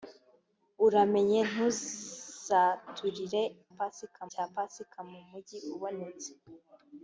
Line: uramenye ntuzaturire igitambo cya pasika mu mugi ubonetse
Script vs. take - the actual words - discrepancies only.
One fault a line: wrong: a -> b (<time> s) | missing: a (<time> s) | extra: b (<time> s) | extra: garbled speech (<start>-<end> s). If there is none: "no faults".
wrong: igitambo -> pasika (3.8 s)